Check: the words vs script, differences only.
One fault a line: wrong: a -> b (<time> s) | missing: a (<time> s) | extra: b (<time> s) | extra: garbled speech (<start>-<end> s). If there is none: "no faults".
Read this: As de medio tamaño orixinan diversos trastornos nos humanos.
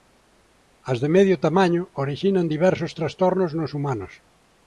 no faults